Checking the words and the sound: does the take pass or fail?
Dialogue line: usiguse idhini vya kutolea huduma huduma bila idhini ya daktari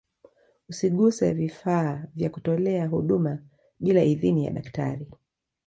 fail